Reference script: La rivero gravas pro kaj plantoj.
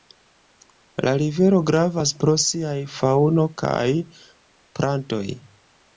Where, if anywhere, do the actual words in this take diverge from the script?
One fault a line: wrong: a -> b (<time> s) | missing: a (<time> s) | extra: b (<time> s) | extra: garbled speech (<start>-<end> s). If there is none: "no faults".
extra: siaj faŭno (2.5 s)